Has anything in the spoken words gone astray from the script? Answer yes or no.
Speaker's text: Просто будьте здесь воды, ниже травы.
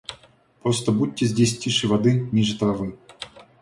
yes